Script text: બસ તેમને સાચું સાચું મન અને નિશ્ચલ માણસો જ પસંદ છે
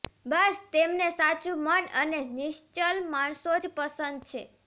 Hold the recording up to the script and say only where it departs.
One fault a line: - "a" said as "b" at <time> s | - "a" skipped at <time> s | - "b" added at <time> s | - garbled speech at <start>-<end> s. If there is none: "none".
- "સાચું" skipped at 1.6 s